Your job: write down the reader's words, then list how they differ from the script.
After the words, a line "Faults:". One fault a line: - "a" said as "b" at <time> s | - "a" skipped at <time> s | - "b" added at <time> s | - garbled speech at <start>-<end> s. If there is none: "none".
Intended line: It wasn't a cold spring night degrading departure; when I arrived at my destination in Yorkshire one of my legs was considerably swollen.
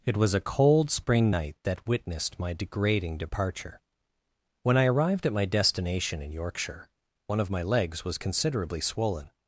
It was a cold spring night that witnessed my degrading departure; when I arrived at my destination in Yorkshire one of my legs was considerably swollen.
Faults:
- "wasn't" said as "was" at 0.2 s
- "that witnessed my" added at 1.6 s